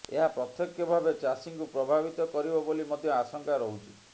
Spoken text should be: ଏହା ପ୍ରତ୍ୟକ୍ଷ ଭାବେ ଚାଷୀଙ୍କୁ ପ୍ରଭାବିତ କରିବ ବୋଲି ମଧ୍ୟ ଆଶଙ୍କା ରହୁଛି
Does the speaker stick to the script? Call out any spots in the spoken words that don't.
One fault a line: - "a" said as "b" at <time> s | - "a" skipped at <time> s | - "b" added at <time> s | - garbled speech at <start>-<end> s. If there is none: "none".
none